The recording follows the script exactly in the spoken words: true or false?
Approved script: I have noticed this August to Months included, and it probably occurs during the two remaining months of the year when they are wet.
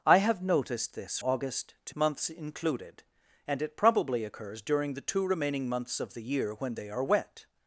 true